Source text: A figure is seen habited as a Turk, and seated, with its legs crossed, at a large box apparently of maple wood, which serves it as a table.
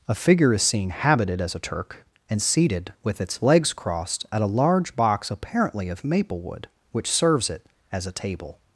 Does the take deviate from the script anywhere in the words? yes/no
no